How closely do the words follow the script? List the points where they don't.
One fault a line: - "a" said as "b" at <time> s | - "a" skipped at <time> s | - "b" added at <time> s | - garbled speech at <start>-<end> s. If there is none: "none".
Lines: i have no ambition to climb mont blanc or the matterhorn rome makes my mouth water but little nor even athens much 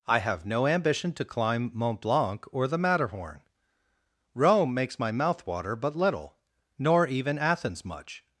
none